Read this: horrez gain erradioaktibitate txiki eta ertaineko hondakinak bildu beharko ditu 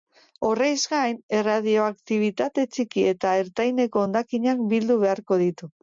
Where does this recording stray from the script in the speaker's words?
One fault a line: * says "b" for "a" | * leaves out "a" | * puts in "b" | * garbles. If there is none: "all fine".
all fine